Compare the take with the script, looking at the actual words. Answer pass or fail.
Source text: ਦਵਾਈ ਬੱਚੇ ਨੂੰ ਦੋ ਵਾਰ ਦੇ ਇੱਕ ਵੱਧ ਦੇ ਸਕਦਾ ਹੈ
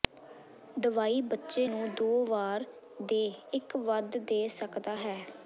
pass